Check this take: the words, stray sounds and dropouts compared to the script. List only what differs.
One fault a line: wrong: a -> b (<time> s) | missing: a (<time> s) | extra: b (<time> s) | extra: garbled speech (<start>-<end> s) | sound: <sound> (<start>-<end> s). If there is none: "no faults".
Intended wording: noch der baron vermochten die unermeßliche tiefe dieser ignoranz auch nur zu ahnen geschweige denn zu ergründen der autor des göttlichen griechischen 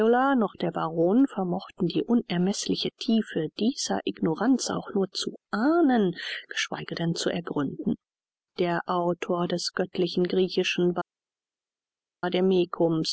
no faults